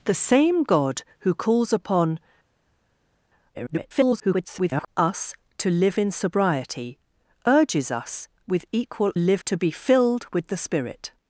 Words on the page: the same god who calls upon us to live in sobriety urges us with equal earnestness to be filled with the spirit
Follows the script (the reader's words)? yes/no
no